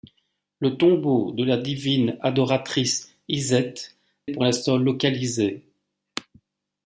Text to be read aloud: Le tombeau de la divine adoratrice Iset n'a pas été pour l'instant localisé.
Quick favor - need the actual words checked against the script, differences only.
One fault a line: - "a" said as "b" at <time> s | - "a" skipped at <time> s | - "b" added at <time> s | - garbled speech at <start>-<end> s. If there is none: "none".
- "n'a pas été" skipped at 3.8 s